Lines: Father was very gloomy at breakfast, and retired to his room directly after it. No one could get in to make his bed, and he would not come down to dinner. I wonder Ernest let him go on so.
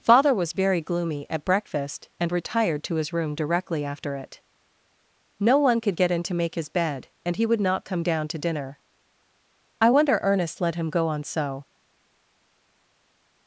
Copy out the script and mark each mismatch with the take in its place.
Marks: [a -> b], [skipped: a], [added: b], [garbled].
Father was very gloomy at breakfast, and retired to his room directly after it. No one could get in to make his bed, and he would not come down to dinner. I wonder Ernest let him go on so.